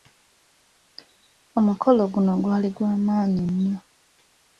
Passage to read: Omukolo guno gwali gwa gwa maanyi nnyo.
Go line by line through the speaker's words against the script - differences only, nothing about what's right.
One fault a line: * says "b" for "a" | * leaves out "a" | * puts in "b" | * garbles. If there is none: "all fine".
* leaves out "gwa"